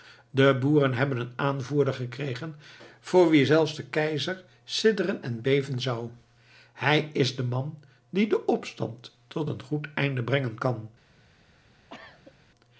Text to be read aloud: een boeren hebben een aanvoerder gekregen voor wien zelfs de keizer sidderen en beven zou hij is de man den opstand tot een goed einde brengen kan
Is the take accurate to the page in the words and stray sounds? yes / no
no